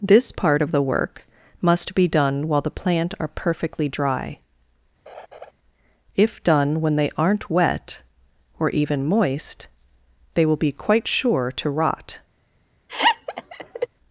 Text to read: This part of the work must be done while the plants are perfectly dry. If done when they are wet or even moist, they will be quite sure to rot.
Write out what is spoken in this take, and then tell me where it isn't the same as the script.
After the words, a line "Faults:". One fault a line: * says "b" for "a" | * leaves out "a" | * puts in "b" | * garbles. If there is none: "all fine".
This part of the work must be done while the plant are perfectly dry. If done when they aren't wet or even moist, they will be quite sure to rot.
Faults:
* says "plant" for "plants"
* says "aren't" for "are"